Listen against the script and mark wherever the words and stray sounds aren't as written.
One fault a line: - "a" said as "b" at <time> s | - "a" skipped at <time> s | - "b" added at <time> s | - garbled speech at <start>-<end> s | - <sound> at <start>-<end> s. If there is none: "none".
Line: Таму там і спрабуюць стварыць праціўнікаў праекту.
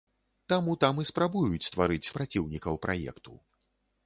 none